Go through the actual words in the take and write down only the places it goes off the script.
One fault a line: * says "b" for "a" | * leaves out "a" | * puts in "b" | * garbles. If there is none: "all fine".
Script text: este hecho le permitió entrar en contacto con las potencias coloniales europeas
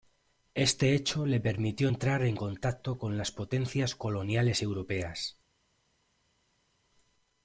all fine